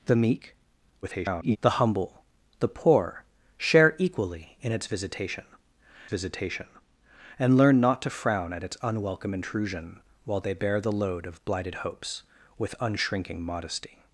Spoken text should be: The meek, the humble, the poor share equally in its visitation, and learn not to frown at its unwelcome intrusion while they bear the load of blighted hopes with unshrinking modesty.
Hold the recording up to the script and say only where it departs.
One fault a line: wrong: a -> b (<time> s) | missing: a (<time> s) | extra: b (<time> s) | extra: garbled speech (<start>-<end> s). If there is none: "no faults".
extra: garbled speech (1.0-1.6 s)
extra: visitation (6.1 s)